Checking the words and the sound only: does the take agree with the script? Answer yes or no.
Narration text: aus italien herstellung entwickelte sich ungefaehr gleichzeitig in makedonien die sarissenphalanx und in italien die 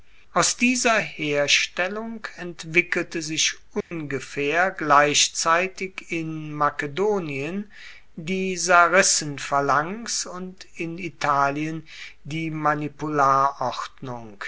no